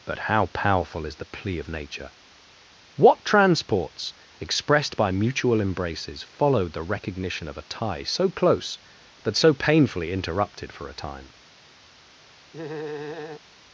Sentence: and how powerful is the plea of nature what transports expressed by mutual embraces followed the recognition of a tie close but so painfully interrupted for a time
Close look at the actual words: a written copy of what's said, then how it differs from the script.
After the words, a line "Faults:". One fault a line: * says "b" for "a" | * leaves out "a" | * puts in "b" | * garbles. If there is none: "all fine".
but how powerful is the plea of nature what transports expressed by mutual embraces followed the recognition of a tie so close but so painfully interrupted for a time
Faults:
* says "but" for "and"
* puts in "so"